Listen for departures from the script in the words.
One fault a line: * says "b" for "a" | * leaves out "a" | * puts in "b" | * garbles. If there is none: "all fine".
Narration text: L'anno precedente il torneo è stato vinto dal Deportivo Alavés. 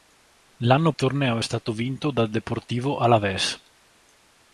* leaves out "precedente il"